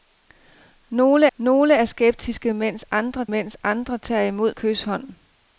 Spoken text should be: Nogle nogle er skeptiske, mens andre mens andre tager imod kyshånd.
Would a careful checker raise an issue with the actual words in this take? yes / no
no